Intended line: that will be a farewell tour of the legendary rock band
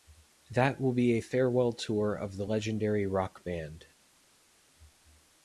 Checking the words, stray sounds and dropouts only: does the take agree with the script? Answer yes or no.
yes